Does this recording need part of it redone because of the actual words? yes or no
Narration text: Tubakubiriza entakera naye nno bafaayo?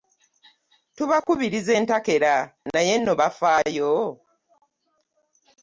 no